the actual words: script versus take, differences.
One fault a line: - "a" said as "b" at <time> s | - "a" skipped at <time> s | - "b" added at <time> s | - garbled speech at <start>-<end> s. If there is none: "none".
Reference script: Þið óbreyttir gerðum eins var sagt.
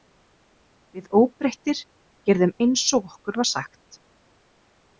- "Þið" said as "Við" at 1.0 s
- "og okkur" added at 3.0 s